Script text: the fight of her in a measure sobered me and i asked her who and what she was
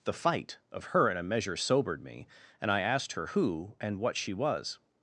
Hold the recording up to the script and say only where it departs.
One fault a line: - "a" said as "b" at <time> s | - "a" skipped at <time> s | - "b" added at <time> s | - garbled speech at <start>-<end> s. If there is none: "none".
none